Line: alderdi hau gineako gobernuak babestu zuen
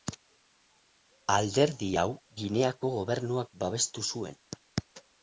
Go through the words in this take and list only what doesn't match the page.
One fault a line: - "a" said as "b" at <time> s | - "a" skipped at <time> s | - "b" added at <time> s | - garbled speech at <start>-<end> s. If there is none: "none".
none